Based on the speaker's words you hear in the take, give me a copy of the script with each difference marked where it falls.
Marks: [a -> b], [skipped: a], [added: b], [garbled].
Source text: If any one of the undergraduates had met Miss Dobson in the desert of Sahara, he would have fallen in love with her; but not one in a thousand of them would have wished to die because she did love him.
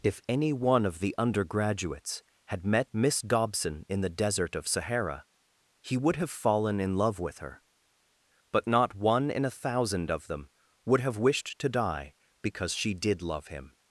If any one of the undergraduates had met Miss Dobson in the desert of Sahara, he would have fallen in love with her; but not one in a thousand of them would have wished to die because she did love him.